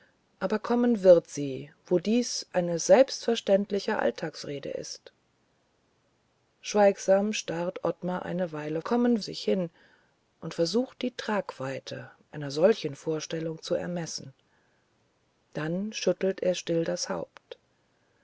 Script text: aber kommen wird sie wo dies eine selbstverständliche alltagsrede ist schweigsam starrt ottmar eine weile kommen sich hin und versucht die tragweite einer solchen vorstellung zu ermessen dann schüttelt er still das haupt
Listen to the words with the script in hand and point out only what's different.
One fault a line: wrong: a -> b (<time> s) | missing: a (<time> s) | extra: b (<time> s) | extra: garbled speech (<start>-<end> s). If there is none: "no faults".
no faults